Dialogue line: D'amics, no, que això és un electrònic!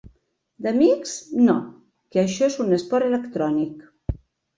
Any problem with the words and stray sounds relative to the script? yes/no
yes